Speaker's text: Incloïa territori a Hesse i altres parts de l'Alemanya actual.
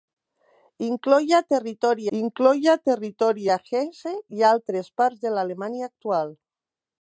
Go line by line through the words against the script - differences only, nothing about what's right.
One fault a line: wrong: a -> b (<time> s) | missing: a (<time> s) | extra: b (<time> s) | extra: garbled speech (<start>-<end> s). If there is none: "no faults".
extra: incloïa territori (2.2 s)